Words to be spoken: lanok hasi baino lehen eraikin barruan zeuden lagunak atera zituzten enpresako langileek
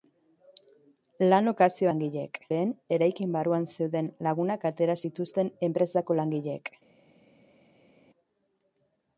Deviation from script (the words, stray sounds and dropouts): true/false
true